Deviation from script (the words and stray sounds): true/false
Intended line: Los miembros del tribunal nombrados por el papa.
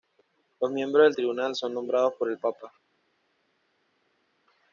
true